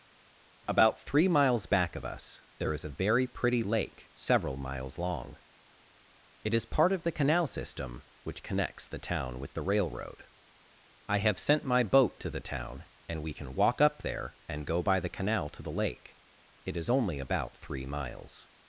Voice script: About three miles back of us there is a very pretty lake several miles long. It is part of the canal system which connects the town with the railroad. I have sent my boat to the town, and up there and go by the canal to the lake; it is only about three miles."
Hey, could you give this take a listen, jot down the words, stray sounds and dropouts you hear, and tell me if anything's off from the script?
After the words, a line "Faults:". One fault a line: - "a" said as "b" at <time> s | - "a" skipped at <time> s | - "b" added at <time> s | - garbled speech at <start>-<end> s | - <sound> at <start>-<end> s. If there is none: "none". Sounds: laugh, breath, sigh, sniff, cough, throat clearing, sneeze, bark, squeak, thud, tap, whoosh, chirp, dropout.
About three miles back of us there is a very pretty lake several miles long. It is part of the canal system which connects the town with the railroad. I have sent my boat to the town, and we can walk up there and go by the canal to the lake; it is only about three miles."
Faults:
- "we can walk" added at 13.2 s